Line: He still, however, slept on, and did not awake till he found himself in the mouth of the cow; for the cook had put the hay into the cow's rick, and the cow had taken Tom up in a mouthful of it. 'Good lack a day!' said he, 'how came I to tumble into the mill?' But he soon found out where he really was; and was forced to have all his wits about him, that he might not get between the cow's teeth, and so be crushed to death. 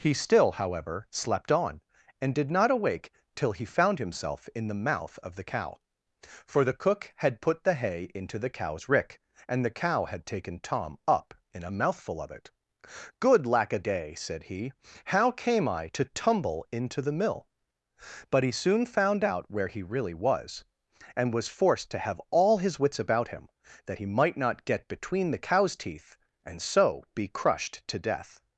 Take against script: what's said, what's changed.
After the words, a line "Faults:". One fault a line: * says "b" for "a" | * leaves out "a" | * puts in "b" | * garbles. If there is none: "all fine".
He still, however, slept on, and did not awake till he found himself in the mouth of the cow; for the cook had put the hay into the cow's rick, and the cow had taken Tom up in a mouthful of it. 'Good lack a day!' said he, 'how came I to tumble into the mill?' But he soon found out where he really was; and was forced to have all his wits about him, that he might not get between the cow's teeth, and so be crushed to death.
Faults:
all fine